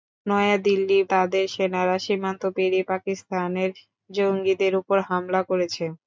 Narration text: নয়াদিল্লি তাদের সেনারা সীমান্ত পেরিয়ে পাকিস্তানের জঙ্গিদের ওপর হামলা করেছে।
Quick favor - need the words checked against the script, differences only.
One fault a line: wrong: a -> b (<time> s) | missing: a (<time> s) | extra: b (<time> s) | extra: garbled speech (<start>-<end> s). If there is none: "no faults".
no faults